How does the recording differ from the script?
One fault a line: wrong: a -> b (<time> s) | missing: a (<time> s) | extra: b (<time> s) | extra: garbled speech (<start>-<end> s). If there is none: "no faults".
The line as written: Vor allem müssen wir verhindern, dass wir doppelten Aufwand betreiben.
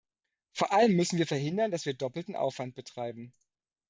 no faults